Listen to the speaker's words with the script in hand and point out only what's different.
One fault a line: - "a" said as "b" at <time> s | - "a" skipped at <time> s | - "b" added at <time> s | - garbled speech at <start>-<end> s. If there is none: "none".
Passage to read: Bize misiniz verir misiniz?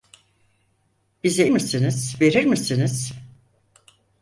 none